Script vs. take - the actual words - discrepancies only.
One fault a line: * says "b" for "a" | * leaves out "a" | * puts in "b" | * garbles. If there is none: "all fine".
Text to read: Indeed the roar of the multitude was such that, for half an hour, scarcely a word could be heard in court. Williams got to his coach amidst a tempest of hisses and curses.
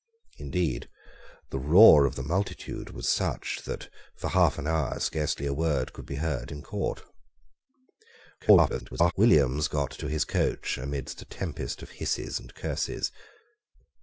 * garbles